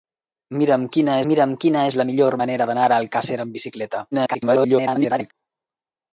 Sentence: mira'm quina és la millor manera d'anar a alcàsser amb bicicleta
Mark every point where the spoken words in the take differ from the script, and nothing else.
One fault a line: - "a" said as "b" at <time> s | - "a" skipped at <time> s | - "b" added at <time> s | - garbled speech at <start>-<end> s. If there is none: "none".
- "mira'm quina" added at 1.3 s
- garbled speech at 4.1-5.3 s